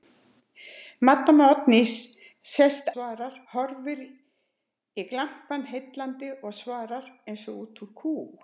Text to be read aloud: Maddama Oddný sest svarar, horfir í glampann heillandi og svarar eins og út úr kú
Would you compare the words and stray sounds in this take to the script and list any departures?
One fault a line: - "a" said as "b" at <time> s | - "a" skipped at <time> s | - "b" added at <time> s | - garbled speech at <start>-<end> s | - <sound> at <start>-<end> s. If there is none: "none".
none